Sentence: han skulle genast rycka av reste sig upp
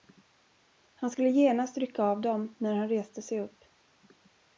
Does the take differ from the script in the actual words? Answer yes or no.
yes